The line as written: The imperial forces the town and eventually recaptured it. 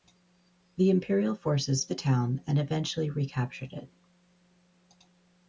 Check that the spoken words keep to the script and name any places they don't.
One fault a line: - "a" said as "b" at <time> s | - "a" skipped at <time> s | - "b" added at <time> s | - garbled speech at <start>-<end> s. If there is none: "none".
none